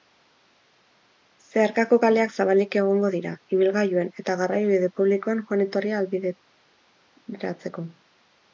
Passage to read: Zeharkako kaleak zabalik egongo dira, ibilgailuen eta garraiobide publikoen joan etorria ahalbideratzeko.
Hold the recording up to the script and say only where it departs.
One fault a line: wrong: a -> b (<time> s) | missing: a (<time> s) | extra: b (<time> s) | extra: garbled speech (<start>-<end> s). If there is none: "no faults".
no faults